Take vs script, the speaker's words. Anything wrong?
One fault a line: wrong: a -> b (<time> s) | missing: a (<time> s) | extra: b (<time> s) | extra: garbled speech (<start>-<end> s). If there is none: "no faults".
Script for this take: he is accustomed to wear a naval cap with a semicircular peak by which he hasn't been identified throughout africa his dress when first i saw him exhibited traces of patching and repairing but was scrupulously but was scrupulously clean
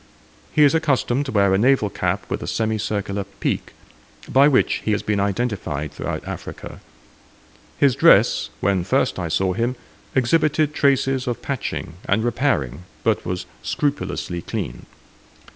wrong: hasn't -> has (4.9 s)
missing: but was scrupulously (14.4 s)